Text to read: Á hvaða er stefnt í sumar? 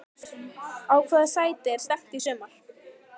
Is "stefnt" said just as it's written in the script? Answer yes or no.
yes